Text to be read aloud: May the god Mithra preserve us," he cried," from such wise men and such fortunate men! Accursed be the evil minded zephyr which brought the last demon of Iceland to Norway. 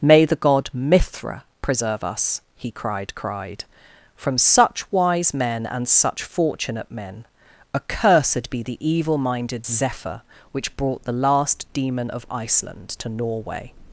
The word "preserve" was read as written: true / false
true